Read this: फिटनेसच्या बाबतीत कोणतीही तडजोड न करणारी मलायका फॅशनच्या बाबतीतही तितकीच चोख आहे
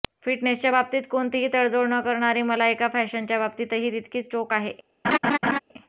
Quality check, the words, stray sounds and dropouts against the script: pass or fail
fail